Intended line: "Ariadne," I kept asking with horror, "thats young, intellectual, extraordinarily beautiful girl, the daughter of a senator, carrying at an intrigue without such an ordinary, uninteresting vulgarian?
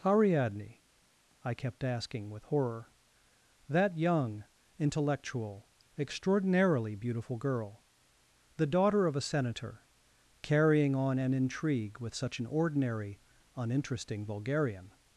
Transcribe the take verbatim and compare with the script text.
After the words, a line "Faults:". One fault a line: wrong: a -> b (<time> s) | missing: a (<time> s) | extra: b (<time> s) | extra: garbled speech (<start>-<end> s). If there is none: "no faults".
"Ariadne," I kept asking with horror, "that young, intellectual, extraordinarily beautiful girl, the daughter of a senator, carrying on an intrigue with such an ordinary, uninteresting vulgarian?
Faults:
wrong: thats -> that (3.7 s)
wrong: at -> on (10.9 s)
wrong: without -> with (12.0 s)